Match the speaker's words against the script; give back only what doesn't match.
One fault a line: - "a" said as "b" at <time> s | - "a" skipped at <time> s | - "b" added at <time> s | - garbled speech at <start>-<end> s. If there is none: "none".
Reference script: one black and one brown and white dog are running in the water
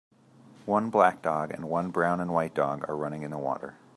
- "dog" added at 1.2 s